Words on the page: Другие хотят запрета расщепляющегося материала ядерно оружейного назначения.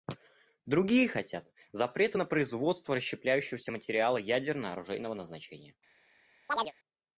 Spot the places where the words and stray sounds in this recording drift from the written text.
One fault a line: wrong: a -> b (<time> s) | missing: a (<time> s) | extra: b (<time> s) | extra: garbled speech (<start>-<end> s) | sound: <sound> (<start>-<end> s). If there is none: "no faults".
extra: на производство (2.1 s)
sound: chirp (6.5-6.7 s)